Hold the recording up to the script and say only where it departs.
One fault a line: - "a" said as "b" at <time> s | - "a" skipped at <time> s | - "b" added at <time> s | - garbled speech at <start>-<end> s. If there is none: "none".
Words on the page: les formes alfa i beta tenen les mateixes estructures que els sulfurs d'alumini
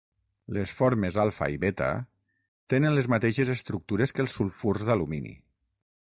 none